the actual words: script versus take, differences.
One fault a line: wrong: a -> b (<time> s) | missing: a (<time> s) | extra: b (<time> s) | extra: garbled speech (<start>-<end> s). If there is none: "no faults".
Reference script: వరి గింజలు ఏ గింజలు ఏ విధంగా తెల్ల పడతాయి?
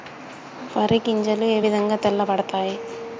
missing: గింజలు ఏ (1.6 s)